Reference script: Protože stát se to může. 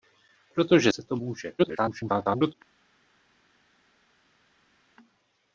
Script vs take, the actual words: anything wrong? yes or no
yes